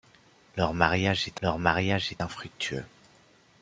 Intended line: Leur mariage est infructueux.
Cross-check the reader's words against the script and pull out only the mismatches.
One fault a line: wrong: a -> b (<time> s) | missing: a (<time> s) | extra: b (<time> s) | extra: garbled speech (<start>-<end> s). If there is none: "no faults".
extra: leur mariage est (1.4 s)